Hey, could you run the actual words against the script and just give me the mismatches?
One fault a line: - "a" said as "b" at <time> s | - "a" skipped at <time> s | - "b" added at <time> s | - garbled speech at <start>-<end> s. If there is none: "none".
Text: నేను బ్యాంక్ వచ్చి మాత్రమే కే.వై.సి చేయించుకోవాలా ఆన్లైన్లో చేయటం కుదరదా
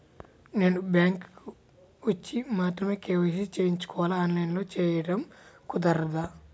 none